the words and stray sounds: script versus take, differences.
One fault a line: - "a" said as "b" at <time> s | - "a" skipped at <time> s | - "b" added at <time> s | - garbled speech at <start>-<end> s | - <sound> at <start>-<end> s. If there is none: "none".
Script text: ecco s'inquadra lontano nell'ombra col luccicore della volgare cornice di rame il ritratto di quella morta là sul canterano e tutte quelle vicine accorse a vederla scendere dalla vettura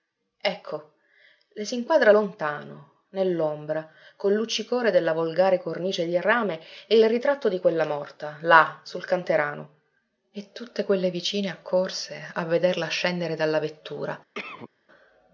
- "le" added at 1.5 s
- cough at 14.3-14.7 s